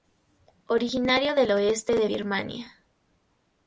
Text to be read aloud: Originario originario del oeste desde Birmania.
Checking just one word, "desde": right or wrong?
wrong